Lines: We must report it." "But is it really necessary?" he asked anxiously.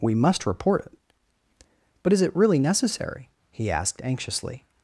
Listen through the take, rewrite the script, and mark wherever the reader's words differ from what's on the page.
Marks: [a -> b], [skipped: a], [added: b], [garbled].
We must report it." "But is it really necessary?" he asked anxiously.